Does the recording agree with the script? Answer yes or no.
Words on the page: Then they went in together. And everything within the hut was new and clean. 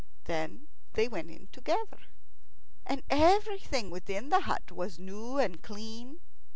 yes